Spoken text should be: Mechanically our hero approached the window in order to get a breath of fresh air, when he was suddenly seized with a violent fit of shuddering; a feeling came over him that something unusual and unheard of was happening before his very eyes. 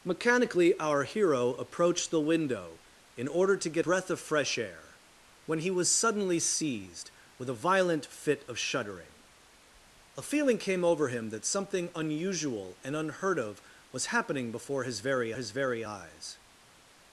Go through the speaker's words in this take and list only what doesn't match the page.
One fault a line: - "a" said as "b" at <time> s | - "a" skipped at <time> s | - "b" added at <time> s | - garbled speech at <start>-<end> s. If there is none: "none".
- "a" skipped at 3.9 s
- "his very" added at 15.3 s